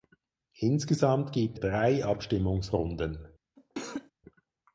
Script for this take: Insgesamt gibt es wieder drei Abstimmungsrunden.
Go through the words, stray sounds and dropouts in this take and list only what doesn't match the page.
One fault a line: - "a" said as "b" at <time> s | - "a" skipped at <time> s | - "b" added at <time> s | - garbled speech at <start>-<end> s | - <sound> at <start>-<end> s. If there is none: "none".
- "es wieder" skipped at 1.6 s
- cough at 3.6-4.1 s